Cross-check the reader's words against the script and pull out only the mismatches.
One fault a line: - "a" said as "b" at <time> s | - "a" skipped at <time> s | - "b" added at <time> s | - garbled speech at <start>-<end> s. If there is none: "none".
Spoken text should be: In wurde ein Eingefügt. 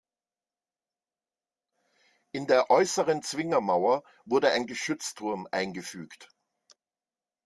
- "der äußeren Zwingermauer" added at 2.5 s
- "Geschützturm" added at 4.7 s